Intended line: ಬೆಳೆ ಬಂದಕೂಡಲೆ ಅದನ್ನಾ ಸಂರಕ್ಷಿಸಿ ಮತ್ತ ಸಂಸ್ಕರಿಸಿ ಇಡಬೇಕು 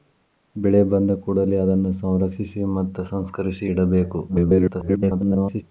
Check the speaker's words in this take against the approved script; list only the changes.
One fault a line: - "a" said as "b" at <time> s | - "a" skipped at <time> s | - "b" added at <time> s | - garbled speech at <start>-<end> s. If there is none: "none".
- garbled speech at 4.3-5.6 s